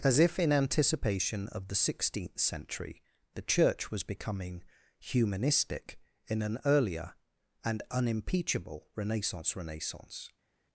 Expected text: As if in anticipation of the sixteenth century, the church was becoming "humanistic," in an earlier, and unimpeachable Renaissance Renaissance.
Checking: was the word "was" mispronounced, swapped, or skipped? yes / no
no